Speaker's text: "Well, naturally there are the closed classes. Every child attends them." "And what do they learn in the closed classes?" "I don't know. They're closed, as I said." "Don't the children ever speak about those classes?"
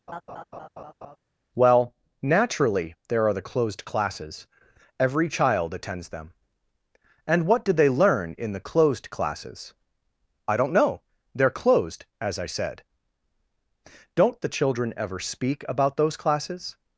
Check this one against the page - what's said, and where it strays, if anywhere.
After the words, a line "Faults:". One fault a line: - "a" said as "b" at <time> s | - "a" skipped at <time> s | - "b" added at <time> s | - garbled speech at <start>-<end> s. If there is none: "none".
"Well, naturally there are the closed classes. Every child attends them." "And what do they learn in the closed classes?" "I don't know. They're closed, as I said." "Don't the children ever speak about those classes?"
Faults:
none